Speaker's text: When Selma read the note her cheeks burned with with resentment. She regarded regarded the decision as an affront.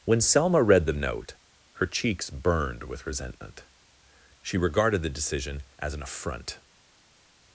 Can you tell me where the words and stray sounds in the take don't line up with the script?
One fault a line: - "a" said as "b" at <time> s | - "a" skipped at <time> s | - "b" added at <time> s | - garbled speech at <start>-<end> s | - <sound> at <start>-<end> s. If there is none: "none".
- "with" skipped at 3.0 s
- "regarded" skipped at 5.0 s